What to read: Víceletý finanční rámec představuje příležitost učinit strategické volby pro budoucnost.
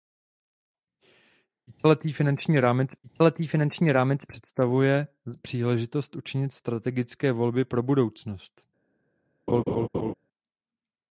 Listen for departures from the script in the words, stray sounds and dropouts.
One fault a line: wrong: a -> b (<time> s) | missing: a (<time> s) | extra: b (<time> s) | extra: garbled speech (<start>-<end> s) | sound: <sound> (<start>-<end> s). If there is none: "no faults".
extra: víceletý finanční rámec (3.0 s)
sound: laugh (9.5-10.1 s)